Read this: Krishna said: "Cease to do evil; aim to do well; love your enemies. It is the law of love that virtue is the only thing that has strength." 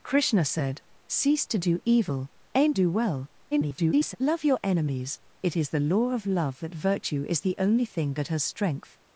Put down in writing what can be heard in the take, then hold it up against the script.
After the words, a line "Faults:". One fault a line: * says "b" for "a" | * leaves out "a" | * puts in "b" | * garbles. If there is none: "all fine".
Krishna said: "Cease to do evil; aim do well; [garbled] love your enemies. It is the law of love that virtue is the only thing that has strength."
Faults:
* leaves out "to"
* garbles